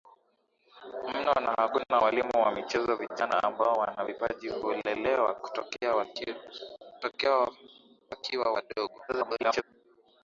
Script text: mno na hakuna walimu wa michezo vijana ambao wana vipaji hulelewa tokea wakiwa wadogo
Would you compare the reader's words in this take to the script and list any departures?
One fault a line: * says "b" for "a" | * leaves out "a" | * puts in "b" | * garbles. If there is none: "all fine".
* garbles